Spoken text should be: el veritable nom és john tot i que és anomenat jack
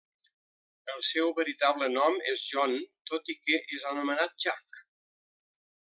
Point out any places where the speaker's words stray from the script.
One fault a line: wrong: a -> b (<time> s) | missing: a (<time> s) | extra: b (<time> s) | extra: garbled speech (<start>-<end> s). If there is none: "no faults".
extra: seu (1.1 s)